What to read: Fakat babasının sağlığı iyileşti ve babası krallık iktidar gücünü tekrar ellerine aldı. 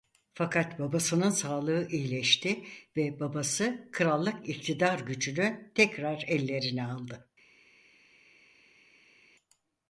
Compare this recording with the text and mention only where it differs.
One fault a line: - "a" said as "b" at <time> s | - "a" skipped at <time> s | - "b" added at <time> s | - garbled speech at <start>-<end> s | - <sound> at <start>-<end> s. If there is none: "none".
none